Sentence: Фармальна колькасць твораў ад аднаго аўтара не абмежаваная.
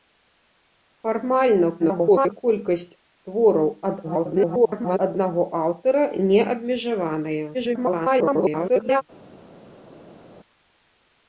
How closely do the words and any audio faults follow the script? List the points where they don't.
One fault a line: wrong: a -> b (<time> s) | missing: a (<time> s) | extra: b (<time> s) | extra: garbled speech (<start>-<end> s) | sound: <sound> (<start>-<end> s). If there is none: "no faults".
extra: garbled speech (1.8-2.4 s)
extra: garbled speech (4.0-5.0 s)
extra: garbled speech (7.5-9.0 s)